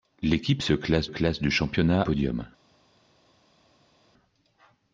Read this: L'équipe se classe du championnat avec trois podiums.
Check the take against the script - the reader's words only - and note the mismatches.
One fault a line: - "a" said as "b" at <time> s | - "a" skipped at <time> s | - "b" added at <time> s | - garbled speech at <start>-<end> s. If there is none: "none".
- "classe" added at 1.0 s
- "avec trois" skipped at 2.0 s